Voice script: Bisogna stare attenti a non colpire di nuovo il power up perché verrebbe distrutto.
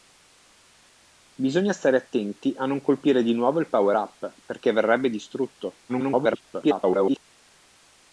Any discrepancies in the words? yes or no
yes